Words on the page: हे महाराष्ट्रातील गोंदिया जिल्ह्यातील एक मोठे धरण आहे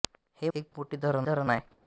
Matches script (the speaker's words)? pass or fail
fail